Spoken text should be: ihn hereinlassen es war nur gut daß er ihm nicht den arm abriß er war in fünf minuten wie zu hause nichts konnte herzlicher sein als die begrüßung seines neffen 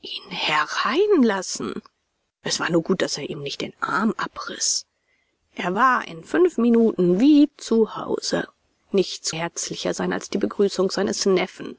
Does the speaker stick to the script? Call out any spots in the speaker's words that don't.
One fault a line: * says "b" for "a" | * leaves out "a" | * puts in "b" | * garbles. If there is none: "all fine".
* leaves out "konnte"